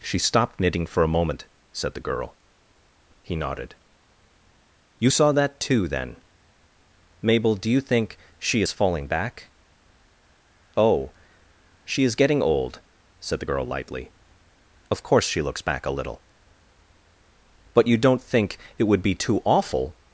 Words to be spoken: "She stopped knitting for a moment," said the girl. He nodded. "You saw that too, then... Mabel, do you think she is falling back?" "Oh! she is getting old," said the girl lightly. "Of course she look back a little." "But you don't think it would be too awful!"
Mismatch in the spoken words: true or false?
true